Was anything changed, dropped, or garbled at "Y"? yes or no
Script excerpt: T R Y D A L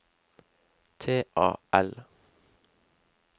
yes